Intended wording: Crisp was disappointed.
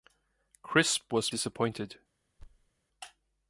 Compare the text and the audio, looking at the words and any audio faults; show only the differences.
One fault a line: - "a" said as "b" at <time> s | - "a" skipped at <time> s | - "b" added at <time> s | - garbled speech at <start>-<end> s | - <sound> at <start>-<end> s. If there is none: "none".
- thud at 2.4-2.7 s